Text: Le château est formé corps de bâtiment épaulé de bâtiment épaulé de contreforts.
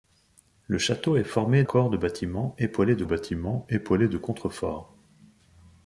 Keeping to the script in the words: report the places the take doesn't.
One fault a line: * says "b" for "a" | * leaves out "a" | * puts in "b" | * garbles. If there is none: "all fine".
all fine